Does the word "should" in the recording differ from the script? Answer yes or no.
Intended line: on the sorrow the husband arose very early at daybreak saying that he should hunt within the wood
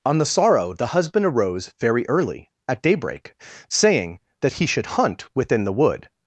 no